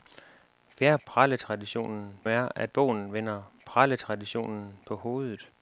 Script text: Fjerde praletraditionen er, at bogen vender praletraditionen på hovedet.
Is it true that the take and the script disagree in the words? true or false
false